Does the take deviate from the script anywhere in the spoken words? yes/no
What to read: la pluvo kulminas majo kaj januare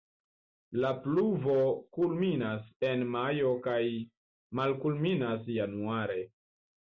yes